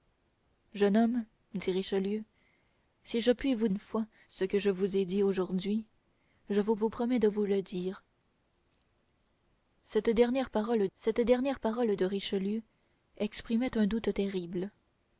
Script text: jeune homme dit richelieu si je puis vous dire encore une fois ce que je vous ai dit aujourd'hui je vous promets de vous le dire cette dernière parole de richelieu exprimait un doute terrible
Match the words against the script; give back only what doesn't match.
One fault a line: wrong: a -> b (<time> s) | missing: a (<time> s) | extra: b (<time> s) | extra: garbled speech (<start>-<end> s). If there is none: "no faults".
missing: dire encore (3.7 s)
extra: vous (6.7 s)
extra: cette dernière parole (11.0 s)